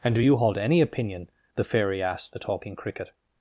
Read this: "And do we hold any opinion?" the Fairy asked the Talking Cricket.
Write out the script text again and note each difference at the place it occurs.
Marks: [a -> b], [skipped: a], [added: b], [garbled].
"And do [we -> you] hold any opinion?" the Fairy asked the Talking Cricket.